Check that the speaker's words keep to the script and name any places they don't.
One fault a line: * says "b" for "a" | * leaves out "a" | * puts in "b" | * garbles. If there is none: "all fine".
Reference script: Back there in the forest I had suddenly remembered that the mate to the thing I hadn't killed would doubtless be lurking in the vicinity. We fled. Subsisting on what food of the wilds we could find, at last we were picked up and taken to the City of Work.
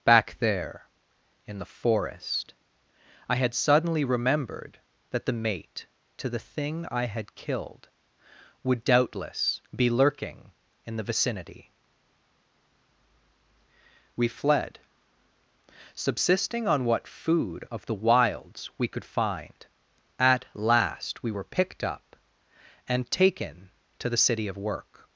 * says "had" for "hadn't"